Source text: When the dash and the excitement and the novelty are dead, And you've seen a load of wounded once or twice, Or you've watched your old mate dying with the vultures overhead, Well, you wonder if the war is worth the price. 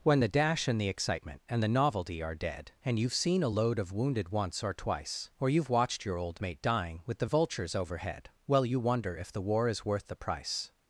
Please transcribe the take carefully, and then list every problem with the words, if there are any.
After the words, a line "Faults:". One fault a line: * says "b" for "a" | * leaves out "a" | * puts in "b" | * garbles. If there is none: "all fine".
When the dash and the excitement and the novelty are dead, And you've seen a load of wounded once or twice, Or you've watched your old mate dying with the vultures overhead, Well, you wonder if the war is worth the price.
Faults:
all fine